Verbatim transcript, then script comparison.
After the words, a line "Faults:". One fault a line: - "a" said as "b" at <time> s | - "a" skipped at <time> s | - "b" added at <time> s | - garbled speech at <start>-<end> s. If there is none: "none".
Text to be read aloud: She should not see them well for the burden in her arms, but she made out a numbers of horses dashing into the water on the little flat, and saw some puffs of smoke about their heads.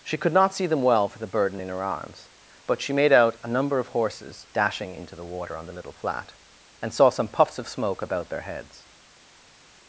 She could not see them well for the burden in her arms, but she made out a number of horses dashing into the water on the little flat, and saw some puffs of smoke about their heads.
Faults:
- "should" said as "could" at 0.2 s
- "numbers" said as "number" at 3.5 s